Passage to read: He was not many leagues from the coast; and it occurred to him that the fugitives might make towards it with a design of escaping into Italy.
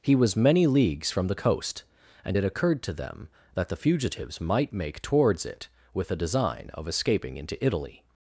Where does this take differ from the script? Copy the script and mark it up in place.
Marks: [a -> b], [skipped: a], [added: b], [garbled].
He was [skipped: not] many leagues from the coast; and it occurred to [him -> them] that the fugitives might make towards it with a design of escaping into Italy.